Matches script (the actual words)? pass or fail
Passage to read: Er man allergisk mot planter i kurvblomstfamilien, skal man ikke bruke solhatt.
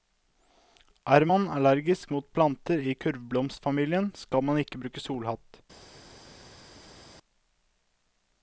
pass